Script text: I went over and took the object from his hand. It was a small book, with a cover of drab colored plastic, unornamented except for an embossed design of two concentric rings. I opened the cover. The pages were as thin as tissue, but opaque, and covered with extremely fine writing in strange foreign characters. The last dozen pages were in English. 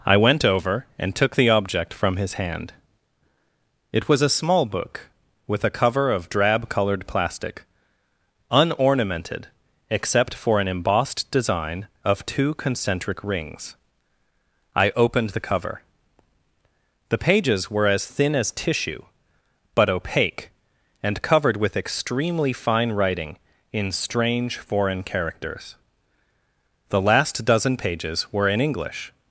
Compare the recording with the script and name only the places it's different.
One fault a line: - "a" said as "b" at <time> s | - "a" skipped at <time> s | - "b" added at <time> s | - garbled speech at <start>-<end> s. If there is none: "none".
none